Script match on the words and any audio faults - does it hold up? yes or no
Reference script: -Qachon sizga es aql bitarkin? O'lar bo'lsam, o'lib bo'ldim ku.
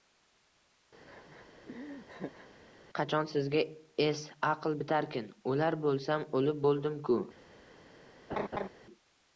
no